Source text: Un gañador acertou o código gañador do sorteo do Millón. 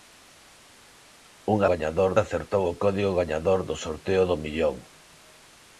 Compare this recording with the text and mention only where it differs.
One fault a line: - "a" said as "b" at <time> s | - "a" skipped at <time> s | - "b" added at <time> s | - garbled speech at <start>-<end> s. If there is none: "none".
none